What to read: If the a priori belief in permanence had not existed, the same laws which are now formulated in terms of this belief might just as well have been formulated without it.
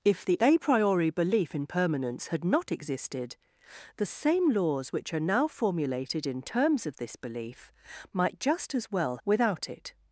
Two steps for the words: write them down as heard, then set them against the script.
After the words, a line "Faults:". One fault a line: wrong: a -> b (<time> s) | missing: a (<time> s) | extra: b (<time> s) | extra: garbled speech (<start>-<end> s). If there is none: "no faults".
If the a priori belief in permanence had not existed, the same laws which are now formulated in terms of this belief might just as well without it.
Faults:
missing: have been formulated (9.2 s)